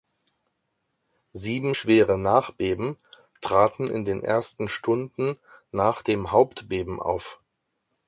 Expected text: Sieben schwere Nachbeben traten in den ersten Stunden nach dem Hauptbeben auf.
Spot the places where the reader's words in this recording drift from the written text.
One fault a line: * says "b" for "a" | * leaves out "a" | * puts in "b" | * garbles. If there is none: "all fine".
all fine